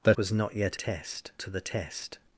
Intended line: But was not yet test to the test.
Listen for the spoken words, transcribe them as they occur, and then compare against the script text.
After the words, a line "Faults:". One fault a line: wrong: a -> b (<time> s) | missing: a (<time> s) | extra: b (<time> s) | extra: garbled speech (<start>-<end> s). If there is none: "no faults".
But was not yet test to the test.
Faults:
no faults